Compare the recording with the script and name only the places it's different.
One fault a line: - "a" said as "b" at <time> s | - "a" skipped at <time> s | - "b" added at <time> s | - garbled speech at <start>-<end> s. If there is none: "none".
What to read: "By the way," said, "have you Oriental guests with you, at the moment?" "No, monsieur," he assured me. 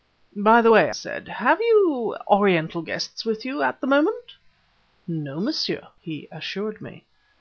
none